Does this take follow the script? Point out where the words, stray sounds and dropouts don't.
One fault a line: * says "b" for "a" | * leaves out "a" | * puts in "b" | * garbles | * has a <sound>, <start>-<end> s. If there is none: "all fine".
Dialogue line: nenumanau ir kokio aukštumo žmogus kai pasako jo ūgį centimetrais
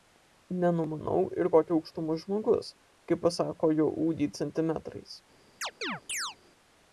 * has a chirp, 5.6-6.4 s